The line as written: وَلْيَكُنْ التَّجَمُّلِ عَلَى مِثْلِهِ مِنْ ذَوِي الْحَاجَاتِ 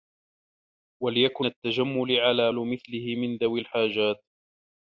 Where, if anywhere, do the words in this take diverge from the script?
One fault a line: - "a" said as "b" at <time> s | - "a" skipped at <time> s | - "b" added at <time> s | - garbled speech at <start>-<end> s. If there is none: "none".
none